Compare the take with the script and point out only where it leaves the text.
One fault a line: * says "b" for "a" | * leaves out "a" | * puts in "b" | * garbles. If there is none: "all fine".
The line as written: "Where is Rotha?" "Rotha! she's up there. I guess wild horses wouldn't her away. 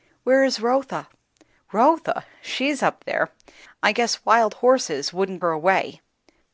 all fine